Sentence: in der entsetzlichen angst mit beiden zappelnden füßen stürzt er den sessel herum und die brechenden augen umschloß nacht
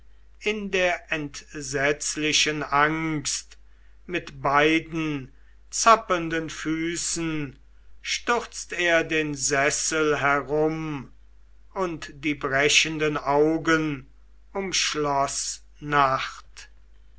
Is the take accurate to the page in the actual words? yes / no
yes